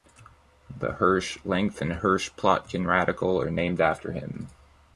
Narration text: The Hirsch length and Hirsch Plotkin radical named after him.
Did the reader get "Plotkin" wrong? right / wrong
right